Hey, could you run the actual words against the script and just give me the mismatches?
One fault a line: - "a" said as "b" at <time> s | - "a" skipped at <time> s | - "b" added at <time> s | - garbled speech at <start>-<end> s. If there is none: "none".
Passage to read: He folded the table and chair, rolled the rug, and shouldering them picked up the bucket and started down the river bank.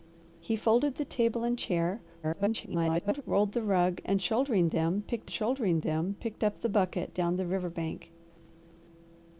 - garbled speech at 2.2-3.2 s
- "shouldering them picked" added at 5.3 s
- "and started" skipped at 7.1 s